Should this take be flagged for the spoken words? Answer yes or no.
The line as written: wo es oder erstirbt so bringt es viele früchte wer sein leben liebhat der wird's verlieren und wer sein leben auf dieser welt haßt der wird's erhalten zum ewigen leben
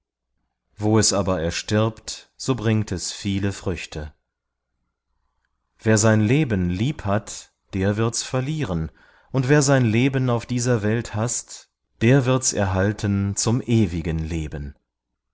yes